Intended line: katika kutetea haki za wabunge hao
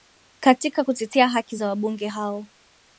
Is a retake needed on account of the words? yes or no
no